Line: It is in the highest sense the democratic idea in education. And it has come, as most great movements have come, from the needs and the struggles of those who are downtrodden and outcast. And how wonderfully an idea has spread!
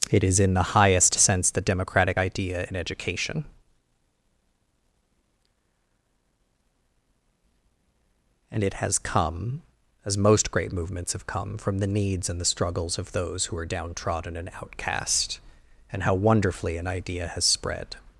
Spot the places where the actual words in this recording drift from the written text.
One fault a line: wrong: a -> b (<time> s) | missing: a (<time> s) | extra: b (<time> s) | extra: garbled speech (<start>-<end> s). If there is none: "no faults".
no faults